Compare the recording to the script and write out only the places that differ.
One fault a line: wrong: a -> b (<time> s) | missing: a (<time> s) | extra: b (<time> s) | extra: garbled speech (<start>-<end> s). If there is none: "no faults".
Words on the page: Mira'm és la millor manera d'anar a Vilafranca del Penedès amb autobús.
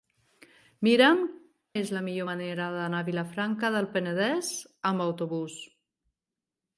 no faults